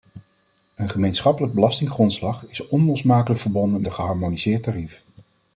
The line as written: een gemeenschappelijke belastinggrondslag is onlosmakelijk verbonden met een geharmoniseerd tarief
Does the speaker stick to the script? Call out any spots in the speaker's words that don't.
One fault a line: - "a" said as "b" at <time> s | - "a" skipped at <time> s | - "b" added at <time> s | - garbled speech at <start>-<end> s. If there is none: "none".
- "met" skipped at 3.8 s